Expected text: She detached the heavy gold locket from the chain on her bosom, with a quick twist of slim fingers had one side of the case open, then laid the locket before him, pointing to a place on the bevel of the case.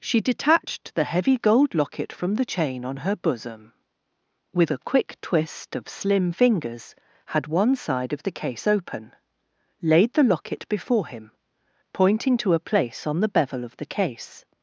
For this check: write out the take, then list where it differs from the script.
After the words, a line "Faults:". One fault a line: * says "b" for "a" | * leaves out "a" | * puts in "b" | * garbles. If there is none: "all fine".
She detached the heavy gold locket from the chain on her bosom, with a quick twist of slim fingers had one side of the case open, laid the locket before him, pointing to a place on the bevel of the case.
Faults:
* leaves out "then"